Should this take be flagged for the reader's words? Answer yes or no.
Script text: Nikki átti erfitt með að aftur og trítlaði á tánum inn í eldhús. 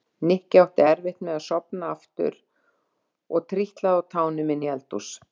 yes